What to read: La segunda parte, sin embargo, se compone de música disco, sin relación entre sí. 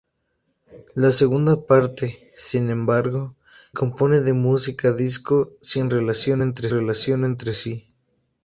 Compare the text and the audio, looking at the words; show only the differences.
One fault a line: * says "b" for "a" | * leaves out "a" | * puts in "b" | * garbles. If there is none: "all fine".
* leaves out "se"
* puts in "relación entre"